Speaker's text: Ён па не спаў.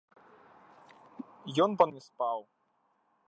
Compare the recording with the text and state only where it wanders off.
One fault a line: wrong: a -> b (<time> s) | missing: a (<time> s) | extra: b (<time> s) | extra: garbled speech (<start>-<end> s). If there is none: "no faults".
no faults